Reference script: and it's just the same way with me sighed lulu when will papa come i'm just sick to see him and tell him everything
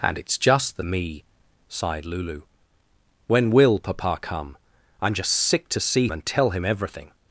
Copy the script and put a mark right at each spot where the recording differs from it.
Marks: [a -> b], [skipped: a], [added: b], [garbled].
and it's just the [skipped: same way with] me sighed lulu when will papa come i'm just sick to see [skipped: him] and tell him everything